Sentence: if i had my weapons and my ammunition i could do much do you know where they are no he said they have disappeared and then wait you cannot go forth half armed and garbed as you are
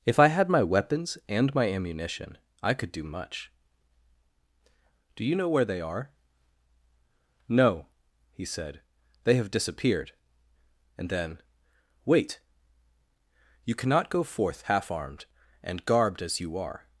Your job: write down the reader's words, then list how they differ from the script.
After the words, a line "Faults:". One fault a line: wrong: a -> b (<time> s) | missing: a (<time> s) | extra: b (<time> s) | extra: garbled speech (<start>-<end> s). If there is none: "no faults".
if i had my weapons and my ammunition i could do much do you know where they are no he said they have disappeared and then wait you cannot go forth half armed and garbed as you are
Faults:
no faults